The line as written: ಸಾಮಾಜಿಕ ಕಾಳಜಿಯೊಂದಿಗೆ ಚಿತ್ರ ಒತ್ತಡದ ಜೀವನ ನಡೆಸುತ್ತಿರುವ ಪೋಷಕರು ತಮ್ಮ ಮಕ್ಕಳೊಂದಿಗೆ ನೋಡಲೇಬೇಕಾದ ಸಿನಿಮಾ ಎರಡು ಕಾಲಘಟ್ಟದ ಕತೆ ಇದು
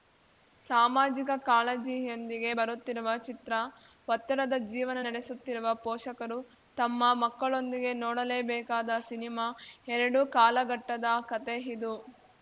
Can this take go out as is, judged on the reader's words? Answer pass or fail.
fail